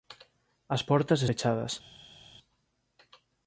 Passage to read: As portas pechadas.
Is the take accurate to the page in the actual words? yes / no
yes